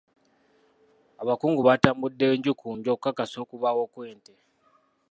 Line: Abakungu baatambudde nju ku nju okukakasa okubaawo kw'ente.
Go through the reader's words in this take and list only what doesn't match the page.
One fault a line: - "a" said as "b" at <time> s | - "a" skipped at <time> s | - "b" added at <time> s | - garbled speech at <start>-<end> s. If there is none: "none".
none